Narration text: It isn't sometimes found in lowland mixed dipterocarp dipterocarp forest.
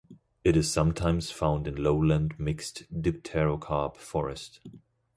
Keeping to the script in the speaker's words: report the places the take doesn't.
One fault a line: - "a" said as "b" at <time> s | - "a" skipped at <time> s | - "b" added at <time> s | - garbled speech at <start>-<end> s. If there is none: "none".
- "isn't" said as "is" at 0.6 s
- "dipterocarp" skipped at 4.0 s